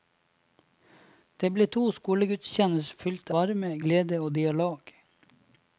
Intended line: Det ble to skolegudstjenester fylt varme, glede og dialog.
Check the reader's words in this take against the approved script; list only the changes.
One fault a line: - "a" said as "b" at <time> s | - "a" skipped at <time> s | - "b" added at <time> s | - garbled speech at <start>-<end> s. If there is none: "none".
none